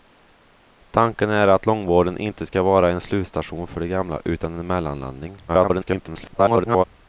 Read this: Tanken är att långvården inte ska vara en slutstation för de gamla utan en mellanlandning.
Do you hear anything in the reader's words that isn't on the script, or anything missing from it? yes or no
yes